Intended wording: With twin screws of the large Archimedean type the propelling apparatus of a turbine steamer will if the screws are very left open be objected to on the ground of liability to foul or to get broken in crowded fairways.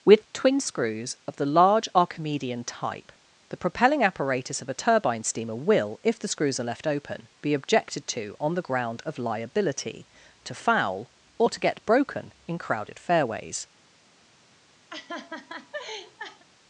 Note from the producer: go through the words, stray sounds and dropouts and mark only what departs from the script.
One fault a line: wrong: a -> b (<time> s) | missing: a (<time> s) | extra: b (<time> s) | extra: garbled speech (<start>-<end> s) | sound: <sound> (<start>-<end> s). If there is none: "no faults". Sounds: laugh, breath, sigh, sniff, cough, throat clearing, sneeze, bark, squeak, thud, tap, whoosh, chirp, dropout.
missing: very (6.6 s)
sound: laugh (14.9-16.4 s)